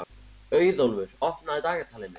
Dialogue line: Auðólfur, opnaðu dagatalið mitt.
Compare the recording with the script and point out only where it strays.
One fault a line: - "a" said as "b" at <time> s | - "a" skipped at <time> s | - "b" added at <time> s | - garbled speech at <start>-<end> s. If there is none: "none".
none